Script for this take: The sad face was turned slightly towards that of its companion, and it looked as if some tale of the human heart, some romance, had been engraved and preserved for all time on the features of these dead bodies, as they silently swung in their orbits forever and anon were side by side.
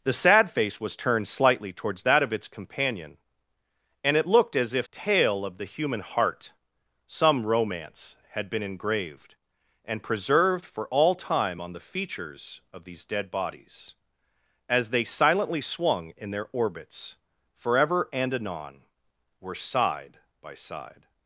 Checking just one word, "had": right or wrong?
right